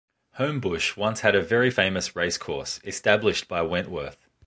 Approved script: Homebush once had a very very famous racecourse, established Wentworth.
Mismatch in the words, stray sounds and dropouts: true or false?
true